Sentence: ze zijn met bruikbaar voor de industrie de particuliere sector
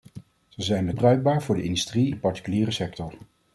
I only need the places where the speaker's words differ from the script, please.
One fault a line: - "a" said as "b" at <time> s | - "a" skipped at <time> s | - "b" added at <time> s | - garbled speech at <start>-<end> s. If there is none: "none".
none